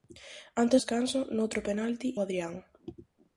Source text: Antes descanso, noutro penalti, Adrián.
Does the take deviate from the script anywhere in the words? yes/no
no